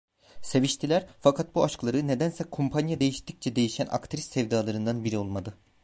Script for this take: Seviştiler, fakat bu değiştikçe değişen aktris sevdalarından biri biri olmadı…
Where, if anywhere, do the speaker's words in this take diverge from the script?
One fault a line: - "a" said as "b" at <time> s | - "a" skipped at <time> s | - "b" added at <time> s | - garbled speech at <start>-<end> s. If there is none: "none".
- "aşkları nedense kumpanya" added at 1.6 s
- "biri" skipped at 5.2 s